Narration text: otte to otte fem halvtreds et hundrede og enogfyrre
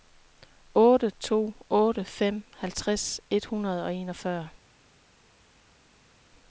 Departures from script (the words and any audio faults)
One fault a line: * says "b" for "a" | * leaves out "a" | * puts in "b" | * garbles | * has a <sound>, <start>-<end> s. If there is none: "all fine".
all fine